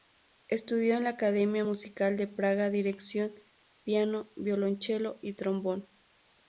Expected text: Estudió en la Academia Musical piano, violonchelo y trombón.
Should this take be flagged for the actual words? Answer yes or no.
yes